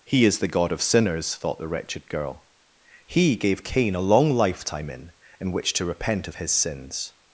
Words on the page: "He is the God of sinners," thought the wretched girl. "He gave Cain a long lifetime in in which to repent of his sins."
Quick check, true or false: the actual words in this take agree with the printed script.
true